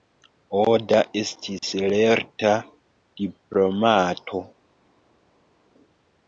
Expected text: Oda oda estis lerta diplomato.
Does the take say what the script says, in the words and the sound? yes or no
no